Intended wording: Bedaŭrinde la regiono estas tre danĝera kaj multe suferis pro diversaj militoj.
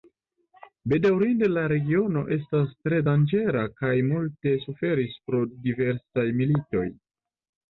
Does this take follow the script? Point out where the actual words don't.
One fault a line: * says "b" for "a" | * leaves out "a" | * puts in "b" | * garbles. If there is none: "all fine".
all fine